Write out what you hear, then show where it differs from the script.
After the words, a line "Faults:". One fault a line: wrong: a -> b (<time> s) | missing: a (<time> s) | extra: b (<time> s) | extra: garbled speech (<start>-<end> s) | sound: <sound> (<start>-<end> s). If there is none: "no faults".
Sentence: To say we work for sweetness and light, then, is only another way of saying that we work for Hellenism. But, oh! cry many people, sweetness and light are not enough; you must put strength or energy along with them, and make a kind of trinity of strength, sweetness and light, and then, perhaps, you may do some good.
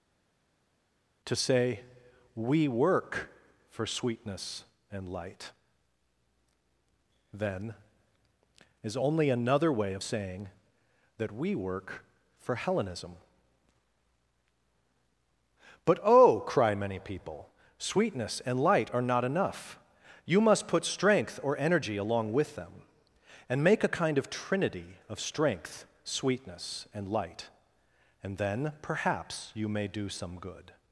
To say we work for sweetness and light, then, is only another way of saying that we work for Hellenism. But, oh! cry many people, sweetness and light are not enough; you must put strength or energy along with them, and make a kind of trinity of strength, sweetness and light, and then, perhaps, you may do some good.
Faults:
no faults